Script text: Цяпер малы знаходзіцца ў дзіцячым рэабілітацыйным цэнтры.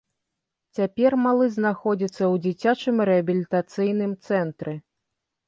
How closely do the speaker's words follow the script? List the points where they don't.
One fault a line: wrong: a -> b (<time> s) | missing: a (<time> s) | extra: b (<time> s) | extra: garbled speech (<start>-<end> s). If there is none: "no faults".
no faults